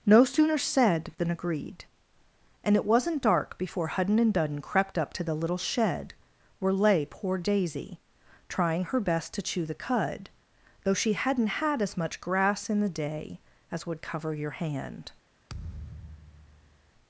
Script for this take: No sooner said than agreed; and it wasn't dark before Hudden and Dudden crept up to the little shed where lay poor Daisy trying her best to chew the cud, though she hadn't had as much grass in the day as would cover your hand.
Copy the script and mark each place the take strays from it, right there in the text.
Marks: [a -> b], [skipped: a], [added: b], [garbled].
No sooner said than agreed; and it wasn't dark before Hudden and Dudden crept up to the little shed where lay poor Daisy trying her best to chew the cud, though she hadn't had as much grass in the day as would cover your hand.